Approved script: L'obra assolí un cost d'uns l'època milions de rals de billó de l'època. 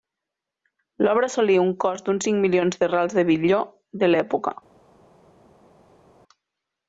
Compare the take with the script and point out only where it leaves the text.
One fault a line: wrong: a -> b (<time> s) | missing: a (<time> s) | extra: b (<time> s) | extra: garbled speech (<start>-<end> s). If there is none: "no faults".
wrong: l'època -> cinc (2.3 s)